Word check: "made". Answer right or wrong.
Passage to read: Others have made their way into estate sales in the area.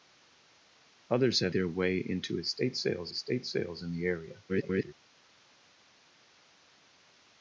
wrong